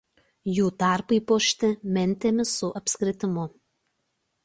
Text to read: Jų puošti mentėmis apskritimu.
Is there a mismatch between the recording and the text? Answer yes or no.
yes